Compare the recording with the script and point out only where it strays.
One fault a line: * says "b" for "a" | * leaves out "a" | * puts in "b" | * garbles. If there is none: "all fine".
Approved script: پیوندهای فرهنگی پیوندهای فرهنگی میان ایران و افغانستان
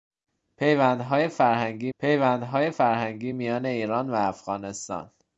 all fine